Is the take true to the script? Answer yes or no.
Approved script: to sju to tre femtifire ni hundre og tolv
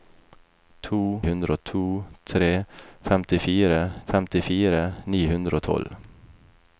no